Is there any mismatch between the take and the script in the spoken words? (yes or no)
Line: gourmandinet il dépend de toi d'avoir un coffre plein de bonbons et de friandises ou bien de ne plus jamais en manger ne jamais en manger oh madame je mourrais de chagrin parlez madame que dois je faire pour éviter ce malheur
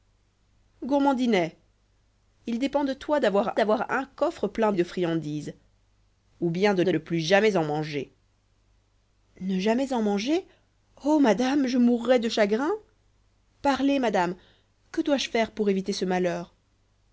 yes